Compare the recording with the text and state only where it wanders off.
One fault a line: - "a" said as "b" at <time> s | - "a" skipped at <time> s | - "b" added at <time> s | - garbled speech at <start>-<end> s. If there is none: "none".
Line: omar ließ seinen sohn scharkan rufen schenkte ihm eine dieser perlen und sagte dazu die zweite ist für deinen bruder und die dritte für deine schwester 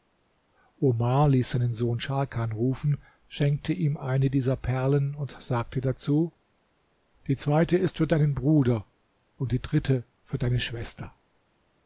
none